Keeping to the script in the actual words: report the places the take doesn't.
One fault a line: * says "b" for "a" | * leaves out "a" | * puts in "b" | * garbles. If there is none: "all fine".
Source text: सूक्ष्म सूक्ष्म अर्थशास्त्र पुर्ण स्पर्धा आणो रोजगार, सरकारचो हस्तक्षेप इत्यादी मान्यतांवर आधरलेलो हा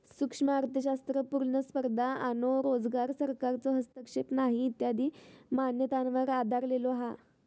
* leaves out "सूक्ष्म"
* puts in "नाही"